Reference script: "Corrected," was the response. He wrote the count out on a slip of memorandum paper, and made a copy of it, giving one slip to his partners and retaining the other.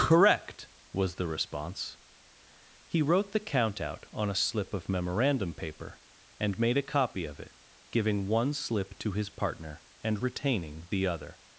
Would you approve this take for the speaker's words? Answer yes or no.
no